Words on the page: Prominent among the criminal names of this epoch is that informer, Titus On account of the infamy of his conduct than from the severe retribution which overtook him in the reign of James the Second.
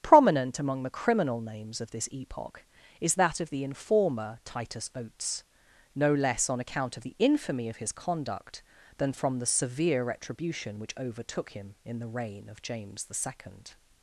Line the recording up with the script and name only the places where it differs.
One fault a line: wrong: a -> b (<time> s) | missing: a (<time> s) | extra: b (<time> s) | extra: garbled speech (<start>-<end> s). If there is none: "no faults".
extra: of the (3.4 s)
extra: Oates no less (5.0 s)